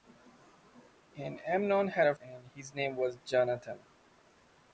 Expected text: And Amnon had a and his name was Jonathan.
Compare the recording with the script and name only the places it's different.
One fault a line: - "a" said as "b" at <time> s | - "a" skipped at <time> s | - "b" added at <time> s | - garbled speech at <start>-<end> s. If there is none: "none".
none